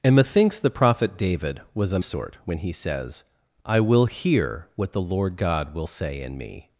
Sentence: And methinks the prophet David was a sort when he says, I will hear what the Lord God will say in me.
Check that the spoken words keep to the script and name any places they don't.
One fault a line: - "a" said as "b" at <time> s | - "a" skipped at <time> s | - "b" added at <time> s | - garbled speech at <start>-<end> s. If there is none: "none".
none